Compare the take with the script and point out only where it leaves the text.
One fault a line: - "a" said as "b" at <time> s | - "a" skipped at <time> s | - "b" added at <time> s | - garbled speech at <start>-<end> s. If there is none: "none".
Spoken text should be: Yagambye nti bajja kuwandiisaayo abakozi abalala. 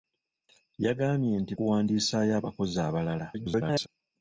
- "bajja" skipped at 1.5 s
- garbled speech at 3.3-3.9 s